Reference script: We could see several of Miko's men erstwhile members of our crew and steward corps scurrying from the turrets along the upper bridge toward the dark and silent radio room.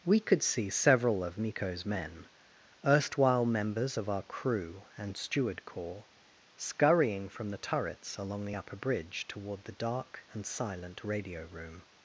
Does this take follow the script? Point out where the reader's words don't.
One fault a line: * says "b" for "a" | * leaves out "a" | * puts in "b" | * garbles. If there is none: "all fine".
all fine